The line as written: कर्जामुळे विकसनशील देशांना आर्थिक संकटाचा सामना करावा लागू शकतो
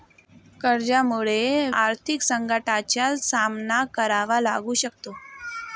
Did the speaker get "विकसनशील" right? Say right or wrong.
wrong